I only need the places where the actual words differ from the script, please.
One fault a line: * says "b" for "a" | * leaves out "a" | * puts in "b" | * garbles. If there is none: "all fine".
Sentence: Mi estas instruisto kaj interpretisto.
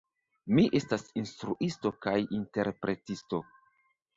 all fine